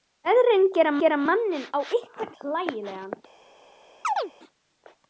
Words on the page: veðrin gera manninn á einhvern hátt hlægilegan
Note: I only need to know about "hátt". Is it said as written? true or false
false